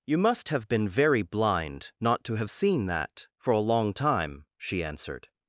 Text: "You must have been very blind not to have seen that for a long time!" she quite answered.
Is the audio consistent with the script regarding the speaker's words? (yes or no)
no